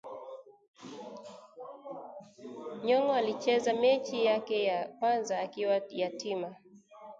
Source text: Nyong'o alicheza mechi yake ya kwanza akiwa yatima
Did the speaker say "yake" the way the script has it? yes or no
yes